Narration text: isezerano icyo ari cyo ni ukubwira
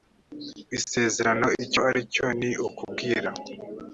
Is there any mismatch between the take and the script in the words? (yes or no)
no